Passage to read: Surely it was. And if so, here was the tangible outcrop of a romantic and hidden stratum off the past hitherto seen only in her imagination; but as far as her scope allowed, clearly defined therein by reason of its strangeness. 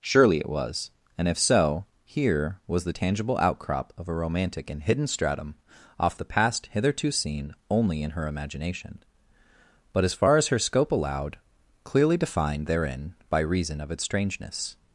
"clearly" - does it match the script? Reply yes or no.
yes